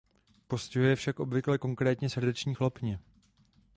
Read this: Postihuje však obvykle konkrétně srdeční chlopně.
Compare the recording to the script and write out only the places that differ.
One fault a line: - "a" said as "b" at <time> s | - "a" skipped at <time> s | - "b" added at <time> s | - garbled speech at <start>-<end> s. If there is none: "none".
none